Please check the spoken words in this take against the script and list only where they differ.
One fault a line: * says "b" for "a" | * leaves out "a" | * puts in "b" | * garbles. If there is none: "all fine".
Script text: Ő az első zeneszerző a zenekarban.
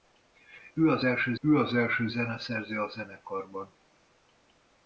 * puts in "ő az első"